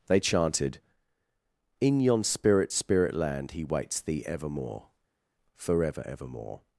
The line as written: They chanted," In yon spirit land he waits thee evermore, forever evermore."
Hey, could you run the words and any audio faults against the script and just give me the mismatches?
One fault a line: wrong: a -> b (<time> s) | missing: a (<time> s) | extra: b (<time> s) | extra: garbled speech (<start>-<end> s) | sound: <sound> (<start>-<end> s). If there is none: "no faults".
extra: spirit (2.7 s)